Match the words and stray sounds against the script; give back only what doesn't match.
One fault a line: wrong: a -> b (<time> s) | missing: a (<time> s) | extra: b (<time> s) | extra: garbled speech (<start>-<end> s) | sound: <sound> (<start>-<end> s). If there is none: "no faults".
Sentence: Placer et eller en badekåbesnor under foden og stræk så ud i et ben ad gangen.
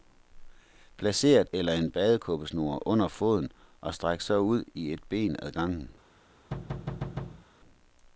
sound: thud (6.5-7.5 s)